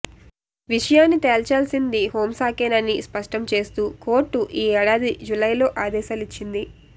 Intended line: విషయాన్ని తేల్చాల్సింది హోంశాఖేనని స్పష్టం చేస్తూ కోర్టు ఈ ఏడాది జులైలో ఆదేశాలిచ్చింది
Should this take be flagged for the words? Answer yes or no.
no